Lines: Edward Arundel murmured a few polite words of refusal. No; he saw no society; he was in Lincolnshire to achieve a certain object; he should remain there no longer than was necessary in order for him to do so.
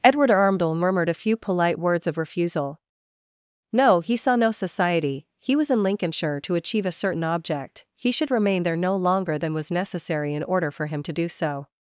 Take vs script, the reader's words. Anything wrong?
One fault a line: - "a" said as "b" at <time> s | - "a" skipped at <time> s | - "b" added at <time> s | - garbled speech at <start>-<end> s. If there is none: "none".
none